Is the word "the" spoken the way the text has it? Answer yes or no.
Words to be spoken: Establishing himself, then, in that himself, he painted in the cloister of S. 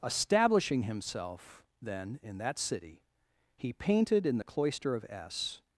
yes